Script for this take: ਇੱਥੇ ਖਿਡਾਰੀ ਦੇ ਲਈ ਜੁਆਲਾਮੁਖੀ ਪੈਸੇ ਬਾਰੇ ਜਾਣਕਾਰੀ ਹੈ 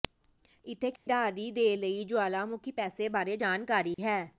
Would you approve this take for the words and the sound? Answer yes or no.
no